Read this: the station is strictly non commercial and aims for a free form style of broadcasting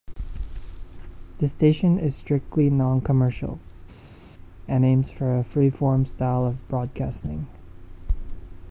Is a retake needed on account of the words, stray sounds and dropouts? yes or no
no